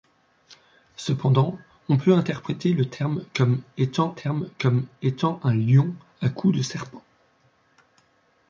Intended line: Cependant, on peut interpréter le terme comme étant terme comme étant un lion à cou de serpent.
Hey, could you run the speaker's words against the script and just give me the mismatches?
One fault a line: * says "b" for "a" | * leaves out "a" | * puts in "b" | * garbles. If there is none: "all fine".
all fine